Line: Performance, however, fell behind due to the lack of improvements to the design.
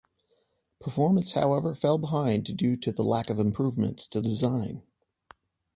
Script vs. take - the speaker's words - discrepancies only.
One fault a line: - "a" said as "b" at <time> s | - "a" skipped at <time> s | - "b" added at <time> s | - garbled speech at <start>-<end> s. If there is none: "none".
- "the" skipped at 4.2 s